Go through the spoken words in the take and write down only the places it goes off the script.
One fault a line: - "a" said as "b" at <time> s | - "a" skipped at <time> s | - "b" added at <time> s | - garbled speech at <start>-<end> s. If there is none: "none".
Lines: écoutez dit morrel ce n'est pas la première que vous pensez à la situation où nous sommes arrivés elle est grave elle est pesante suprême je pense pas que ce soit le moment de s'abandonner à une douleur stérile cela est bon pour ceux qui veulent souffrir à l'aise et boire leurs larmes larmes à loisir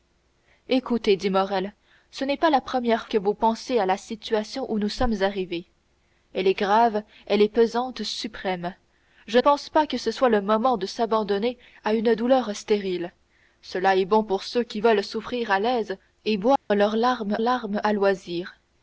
none